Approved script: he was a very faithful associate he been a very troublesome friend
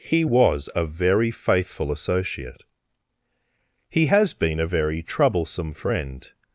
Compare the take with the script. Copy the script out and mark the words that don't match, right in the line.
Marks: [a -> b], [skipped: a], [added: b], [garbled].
he was a very faithful associate he [added: has] been a very troublesome friend